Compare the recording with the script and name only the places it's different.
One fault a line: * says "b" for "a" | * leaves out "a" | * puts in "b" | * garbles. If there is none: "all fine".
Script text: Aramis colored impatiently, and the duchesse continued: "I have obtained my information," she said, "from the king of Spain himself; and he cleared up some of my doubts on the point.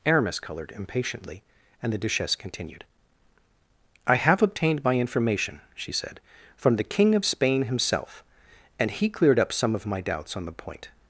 all fine